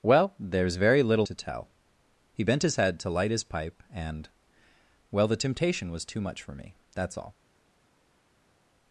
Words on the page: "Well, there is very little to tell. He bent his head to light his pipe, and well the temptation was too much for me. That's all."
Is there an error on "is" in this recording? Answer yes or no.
no